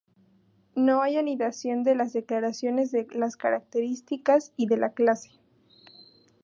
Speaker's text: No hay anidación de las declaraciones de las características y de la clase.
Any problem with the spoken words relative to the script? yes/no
no